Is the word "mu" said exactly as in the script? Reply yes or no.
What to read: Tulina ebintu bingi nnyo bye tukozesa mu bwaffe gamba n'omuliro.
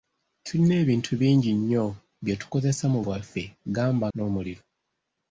yes